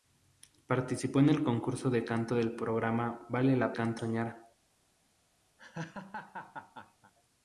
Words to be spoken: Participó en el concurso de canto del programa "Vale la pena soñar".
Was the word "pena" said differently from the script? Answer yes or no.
yes